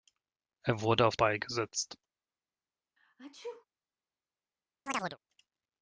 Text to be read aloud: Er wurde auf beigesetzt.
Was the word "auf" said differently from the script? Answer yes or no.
no